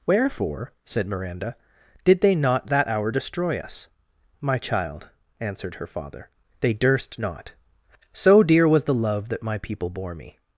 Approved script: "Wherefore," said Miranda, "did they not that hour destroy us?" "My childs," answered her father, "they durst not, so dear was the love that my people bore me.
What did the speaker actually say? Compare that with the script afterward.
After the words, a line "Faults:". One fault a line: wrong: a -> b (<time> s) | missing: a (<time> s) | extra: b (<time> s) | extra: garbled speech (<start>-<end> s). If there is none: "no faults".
"Wherefore," said Miranda, "did they not that hour destroy us?" "My child," answered her father, "they durst not, so dear was the love that my people bore me.
Faults:
wrong: childs -> child (4.6 s)